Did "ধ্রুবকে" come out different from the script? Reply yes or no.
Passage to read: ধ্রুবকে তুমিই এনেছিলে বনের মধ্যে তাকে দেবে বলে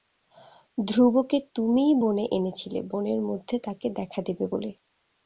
no